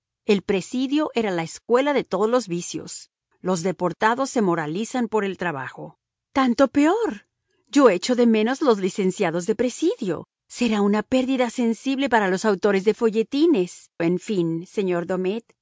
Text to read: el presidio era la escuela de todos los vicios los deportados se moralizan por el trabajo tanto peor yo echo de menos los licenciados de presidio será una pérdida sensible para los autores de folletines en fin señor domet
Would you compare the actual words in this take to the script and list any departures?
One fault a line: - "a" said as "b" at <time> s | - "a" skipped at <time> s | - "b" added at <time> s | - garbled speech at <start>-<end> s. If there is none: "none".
none